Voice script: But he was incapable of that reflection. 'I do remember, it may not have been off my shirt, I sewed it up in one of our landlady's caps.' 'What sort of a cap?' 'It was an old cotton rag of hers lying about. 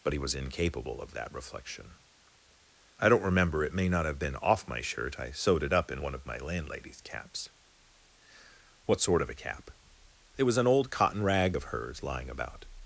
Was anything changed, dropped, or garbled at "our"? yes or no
yes